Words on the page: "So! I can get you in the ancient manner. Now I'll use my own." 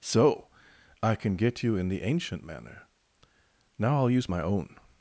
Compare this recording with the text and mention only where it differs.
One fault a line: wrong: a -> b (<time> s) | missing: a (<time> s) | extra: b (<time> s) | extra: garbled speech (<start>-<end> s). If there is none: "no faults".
no faults